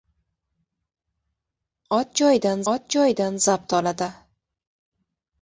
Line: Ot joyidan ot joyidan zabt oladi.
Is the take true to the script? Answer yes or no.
yes